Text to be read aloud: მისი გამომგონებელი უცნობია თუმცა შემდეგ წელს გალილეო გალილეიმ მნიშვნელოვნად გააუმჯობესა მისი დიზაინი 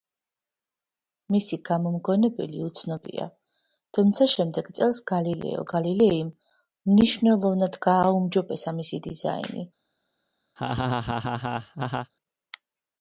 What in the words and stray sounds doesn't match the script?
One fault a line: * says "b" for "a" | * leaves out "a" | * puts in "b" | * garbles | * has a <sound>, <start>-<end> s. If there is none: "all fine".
* has a laugh, 10.6-12.1 s